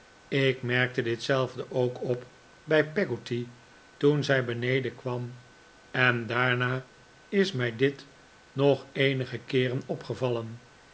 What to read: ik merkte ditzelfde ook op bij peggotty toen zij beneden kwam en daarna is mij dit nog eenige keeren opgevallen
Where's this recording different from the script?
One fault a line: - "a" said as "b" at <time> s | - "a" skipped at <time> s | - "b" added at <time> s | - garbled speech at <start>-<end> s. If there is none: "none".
none